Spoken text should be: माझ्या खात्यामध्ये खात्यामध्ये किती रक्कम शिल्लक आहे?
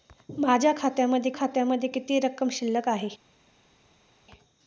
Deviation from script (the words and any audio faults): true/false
false